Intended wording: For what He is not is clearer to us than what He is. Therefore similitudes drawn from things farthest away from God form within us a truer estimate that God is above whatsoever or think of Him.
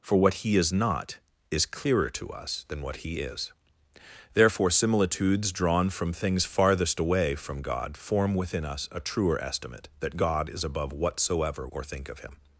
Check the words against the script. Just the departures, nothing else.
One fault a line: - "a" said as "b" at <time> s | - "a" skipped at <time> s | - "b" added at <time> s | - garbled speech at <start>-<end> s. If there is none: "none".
none